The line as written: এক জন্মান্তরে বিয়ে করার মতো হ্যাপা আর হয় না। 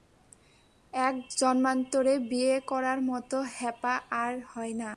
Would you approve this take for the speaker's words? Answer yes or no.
yes